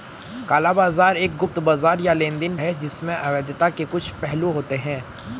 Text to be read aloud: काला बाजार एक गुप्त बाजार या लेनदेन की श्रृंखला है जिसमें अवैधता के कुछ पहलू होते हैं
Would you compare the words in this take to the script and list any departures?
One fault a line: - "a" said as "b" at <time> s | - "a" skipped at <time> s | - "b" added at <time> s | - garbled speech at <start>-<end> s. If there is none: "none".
- "की श्रृंखला" skipped at 2.5 s